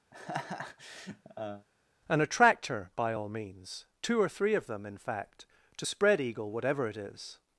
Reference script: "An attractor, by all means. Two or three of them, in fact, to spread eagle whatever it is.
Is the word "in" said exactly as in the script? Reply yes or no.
yes